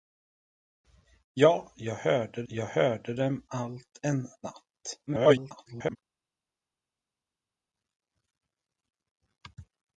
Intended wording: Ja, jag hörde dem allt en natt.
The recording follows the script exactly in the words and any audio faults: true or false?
false